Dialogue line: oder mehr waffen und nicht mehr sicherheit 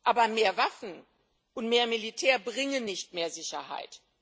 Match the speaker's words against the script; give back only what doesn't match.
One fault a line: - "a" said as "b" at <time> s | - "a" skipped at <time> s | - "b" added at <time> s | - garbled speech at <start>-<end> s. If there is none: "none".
- "oder" said as "aber" at 0.0 s
- "mehr militär bringen" added at 1.7 s